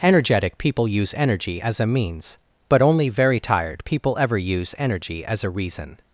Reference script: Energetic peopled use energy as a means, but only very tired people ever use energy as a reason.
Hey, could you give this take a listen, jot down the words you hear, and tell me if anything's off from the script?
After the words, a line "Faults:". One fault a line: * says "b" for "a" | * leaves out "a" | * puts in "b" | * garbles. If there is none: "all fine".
Energetic people use energy as a means, but only very tired people ever use energy as a reason.
Faults:
* says "people" for "peopled"